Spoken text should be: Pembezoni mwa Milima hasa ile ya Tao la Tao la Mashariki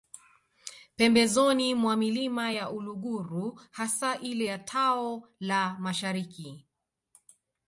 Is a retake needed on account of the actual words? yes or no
yes